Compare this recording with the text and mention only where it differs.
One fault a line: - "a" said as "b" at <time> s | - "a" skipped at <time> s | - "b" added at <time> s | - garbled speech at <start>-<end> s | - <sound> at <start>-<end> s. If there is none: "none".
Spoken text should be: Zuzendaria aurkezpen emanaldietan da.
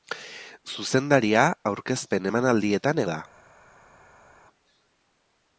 none